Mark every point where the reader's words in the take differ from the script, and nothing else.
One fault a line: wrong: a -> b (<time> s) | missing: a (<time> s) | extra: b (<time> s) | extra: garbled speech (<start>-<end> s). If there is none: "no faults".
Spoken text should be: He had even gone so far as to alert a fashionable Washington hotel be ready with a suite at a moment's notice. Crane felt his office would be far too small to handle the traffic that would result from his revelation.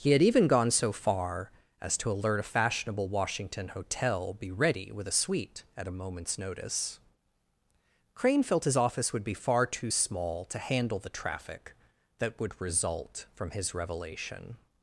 no faults